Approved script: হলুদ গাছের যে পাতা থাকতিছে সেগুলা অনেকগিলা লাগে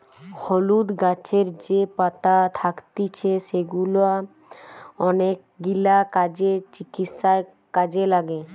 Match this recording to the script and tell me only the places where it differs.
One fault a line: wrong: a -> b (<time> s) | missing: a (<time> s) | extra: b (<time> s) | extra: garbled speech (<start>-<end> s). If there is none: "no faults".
extra: কাজে চিকিৎসায় কাজে (6.1 s)